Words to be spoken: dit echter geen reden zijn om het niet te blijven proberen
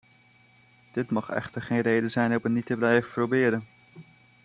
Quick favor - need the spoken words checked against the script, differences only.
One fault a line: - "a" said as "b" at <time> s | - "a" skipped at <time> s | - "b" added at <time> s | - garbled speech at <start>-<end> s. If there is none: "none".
- "mag" added at 1.1 s